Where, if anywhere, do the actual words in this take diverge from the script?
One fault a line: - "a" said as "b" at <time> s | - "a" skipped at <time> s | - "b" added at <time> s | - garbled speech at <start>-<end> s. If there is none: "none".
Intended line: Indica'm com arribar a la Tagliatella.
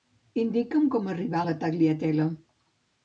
none